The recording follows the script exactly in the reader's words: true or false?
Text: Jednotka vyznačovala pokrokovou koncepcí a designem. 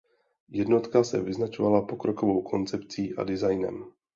false